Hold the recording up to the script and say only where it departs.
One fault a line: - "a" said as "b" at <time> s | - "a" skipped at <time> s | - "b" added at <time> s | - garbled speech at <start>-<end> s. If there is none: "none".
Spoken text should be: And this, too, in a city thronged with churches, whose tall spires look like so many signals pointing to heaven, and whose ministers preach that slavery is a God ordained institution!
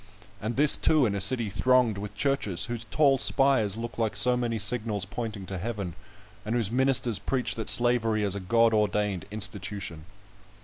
none